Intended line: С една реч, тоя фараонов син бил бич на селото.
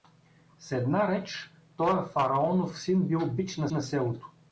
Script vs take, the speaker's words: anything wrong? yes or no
yes